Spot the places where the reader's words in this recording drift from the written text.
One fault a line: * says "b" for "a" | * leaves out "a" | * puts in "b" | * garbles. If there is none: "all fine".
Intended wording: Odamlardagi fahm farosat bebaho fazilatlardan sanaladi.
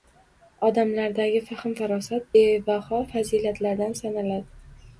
all fine